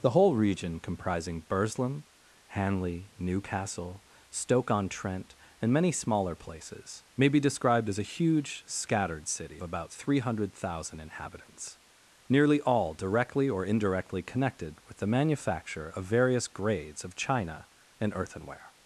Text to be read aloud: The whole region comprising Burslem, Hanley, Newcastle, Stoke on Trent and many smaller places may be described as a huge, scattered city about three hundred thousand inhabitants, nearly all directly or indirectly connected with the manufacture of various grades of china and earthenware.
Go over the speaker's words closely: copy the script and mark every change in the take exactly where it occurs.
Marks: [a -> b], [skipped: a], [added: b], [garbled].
The whole region comprising Burslem, Hanley, Newcastle, Stoke on Trent and many smaller places may be described as a huge, scattered city about three hundred thousand inhabitants, nearly all directly or indirectly connected with the manufacture of various grades of china and earthenware.